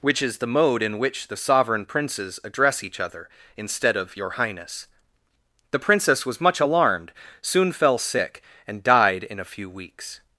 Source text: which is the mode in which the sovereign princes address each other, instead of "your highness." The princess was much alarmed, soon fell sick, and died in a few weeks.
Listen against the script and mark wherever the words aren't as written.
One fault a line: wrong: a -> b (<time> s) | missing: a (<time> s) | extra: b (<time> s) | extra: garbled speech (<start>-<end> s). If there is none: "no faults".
no faults